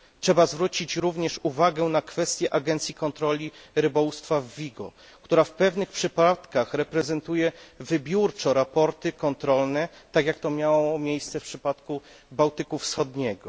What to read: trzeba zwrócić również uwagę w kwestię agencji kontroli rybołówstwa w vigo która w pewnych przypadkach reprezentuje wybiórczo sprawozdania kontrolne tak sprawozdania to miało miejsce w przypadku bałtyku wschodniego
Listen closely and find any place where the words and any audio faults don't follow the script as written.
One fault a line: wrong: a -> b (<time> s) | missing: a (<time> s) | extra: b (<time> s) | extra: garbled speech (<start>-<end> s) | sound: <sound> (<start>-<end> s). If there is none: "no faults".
wrong: w -> na (1.8 s)
wrong: sprawozdania -> jak (10.2 s)